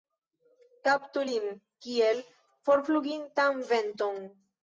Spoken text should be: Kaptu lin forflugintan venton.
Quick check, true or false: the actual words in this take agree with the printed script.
false